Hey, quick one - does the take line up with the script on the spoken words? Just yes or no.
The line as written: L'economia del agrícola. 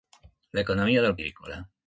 yes